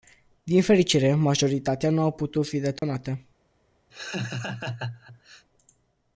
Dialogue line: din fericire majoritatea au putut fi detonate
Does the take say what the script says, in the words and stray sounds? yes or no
no